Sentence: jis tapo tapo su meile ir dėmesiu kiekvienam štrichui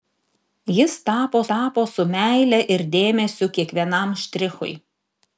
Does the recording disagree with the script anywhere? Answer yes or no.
no